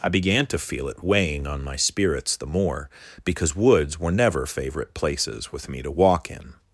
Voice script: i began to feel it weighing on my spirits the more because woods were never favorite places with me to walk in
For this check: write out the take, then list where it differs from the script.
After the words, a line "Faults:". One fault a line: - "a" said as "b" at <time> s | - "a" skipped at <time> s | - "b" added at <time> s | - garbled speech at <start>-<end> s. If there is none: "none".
i began to feel it weighing on my spirits the more because woods were never favorite places with me to walk in
Faults:
none